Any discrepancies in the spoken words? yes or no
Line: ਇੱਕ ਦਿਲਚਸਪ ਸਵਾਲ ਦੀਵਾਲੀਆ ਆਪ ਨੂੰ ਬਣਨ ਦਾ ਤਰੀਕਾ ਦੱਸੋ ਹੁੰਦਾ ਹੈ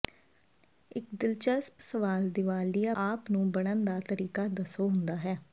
no